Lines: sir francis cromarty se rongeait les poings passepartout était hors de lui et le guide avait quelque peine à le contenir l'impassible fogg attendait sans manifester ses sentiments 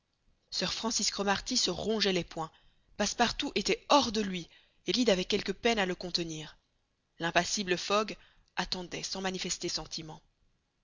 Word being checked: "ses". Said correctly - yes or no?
no